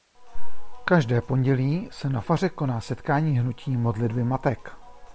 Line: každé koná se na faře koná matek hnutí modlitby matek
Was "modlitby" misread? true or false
false